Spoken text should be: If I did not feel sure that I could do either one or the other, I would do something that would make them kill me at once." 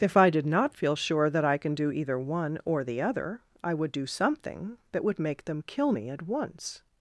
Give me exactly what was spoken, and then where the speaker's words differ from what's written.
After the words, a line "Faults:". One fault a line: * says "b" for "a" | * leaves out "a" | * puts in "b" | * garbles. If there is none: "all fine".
If I did not feel sure that I can do either one or the other, I would do something that would make them kill me at once."
Faults:
* says "can" for "could"